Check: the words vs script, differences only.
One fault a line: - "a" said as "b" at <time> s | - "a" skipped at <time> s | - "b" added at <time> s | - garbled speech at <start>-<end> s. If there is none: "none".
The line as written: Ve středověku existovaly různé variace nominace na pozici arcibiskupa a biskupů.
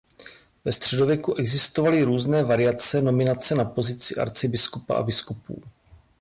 none